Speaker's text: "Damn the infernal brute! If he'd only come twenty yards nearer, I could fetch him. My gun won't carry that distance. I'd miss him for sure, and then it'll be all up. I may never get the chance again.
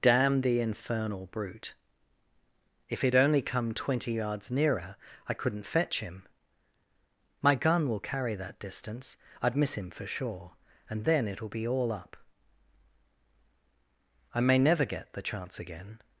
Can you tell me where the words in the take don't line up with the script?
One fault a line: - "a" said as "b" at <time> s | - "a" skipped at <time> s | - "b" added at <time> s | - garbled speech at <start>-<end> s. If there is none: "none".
- "could" said as "couldn't" at 5.3 s
- "won't" said as "will" at 7.9 s